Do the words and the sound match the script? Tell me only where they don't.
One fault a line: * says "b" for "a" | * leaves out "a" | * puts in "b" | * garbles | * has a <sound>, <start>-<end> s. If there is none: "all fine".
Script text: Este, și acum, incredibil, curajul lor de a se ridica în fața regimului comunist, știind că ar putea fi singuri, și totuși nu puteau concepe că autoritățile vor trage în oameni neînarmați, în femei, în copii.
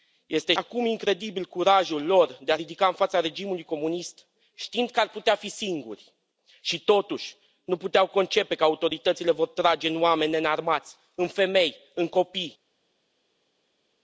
* leaves out "și"
* leaves out "se"